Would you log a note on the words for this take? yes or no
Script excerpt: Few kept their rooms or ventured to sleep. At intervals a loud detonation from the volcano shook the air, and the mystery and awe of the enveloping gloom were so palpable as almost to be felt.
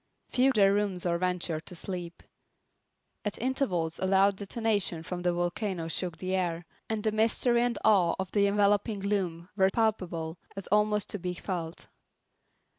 yes